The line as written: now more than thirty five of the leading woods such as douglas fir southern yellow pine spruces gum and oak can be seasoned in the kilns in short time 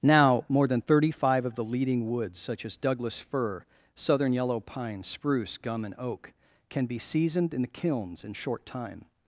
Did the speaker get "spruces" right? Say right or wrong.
wrong